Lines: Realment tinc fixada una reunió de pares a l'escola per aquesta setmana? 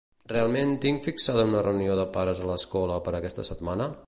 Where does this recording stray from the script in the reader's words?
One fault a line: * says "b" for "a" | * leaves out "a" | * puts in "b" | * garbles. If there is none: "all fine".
all fine